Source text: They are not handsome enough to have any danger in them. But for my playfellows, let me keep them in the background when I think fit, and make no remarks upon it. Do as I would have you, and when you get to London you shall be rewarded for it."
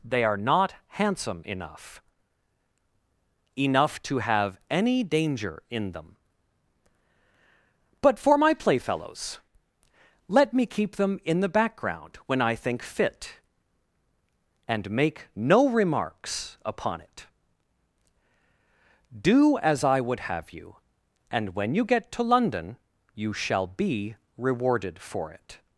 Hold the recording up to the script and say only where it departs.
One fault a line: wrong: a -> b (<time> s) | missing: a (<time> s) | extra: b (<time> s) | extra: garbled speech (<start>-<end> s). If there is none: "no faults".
extra: enough (3.6 s)